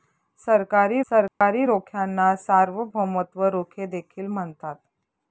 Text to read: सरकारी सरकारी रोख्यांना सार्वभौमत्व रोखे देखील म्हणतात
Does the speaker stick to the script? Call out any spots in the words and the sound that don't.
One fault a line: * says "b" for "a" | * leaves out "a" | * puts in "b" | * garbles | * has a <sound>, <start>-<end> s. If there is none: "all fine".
* has a dropout, 1.3-1.4 s